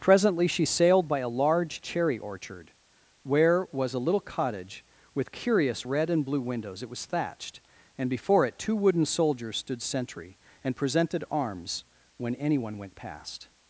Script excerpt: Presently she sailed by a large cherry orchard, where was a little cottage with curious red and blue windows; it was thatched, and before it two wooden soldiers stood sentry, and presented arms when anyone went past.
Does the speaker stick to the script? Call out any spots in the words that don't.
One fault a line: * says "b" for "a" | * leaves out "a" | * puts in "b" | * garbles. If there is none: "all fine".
all fine